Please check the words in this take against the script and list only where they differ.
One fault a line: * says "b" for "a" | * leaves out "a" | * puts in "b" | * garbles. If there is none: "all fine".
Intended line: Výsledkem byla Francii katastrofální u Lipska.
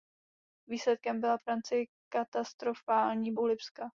all fine